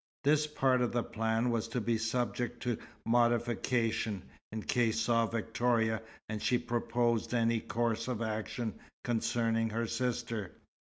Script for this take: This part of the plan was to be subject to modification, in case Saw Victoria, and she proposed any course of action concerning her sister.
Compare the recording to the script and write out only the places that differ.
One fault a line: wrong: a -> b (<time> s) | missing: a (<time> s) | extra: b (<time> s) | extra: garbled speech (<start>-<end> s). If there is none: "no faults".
no faults